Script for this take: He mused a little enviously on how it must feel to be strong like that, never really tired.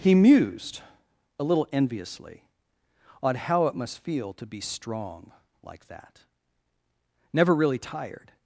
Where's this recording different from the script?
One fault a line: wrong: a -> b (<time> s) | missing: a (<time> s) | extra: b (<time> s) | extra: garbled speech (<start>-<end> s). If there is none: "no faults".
no faults